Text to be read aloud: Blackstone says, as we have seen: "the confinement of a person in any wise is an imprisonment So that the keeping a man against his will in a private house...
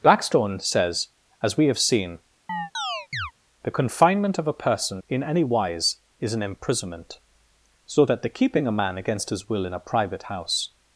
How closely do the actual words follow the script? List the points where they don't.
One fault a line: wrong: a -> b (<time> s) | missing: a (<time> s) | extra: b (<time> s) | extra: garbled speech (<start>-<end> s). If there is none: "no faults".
no faults